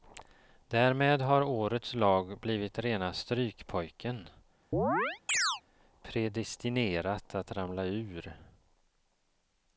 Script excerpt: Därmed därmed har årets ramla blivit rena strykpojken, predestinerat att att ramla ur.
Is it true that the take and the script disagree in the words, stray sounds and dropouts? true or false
true